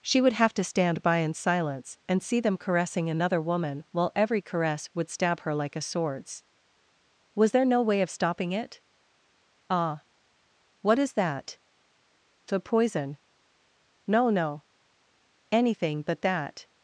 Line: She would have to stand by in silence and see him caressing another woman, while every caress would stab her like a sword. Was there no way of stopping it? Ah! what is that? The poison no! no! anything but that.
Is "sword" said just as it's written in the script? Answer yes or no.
no